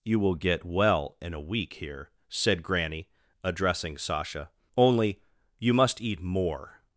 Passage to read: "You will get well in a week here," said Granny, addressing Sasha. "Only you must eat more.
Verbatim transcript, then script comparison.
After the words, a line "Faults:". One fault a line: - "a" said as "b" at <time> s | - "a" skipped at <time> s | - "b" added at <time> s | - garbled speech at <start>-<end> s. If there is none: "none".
"You will get well in a week here," said Granny, addressing Sasha. "Only you must eat more.
Faults:
none